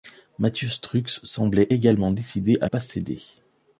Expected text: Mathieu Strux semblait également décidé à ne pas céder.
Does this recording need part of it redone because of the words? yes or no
yes